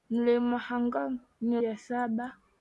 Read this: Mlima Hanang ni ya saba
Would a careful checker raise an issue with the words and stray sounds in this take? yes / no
no